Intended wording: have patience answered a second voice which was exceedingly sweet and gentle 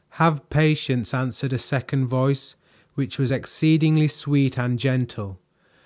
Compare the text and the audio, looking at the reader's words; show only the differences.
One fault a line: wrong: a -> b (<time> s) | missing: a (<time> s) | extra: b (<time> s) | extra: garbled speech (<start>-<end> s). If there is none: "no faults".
no faults